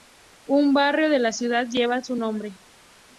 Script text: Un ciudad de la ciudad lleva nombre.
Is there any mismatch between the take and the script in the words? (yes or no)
yes